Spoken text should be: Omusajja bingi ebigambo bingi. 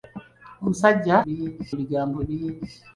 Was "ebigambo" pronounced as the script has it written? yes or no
yes